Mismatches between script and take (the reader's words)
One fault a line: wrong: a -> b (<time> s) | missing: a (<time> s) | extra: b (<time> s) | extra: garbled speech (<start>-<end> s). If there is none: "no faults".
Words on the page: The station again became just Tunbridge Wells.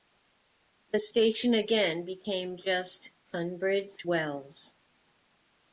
no faults